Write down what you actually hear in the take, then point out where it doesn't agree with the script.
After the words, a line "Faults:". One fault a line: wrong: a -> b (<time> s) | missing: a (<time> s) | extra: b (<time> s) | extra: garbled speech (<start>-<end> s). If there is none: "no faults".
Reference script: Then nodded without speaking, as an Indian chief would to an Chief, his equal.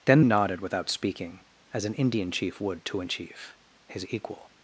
Then nodded without speaking, as an Indian chief would to an Chief, his equal.
Faults:
no faults